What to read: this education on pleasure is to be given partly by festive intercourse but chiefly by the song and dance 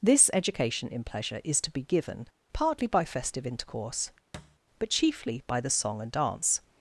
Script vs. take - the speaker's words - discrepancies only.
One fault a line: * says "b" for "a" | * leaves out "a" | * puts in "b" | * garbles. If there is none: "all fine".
* says "in" for "on"